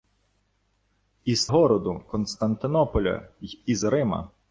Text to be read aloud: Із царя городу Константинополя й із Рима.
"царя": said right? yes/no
no